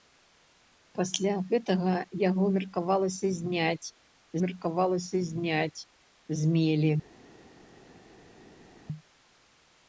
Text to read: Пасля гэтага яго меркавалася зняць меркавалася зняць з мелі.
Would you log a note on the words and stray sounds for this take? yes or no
no